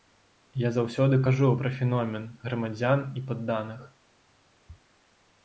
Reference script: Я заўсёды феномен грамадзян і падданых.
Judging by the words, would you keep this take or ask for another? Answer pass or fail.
fail